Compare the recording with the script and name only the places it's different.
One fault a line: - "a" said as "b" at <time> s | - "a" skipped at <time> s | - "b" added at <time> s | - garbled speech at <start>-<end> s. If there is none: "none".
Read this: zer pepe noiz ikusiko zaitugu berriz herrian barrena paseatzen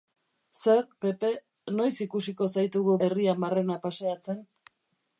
- "berriz" skipped at 3.0 s